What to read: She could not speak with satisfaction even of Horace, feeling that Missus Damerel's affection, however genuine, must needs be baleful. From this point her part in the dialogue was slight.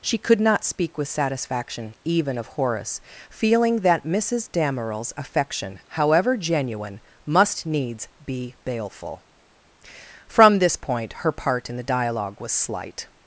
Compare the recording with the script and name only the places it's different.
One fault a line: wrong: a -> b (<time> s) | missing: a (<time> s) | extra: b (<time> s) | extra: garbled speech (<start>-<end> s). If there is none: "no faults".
no faults